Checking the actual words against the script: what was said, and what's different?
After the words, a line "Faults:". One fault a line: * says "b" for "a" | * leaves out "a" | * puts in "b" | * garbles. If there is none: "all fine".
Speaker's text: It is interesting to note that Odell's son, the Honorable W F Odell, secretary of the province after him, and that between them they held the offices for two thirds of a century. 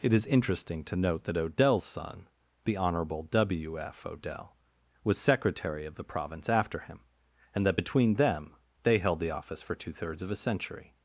It is interesting to note that Odell's son, the Honorable W F Odell, was secretary of the province after him, and that between them they held the office for two thirds of a century.
Faults:
* puts in "was"
* says "office" for "offices"